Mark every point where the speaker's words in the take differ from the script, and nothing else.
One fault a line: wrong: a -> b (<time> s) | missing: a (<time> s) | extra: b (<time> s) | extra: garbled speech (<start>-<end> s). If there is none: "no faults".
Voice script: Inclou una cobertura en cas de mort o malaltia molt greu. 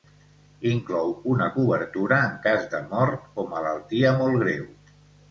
no faults